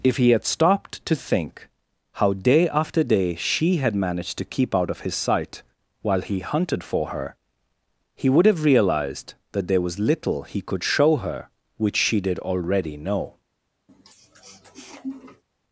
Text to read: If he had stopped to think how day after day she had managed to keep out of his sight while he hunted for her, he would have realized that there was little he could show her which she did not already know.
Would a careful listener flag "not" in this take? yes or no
yes